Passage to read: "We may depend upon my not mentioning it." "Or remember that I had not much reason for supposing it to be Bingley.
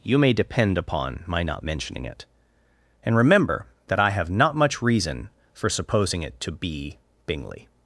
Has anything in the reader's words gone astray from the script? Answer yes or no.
yes